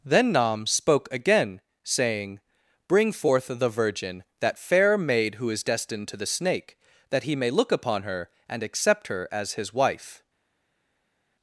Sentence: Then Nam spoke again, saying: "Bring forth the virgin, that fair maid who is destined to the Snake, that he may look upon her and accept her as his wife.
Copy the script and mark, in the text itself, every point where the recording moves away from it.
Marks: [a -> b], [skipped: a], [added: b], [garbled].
Then Nam spoke again, saying: "Bring forth the virgin, that fair maid who is destined to the Snake, that he may look upon her and accept her as his wife.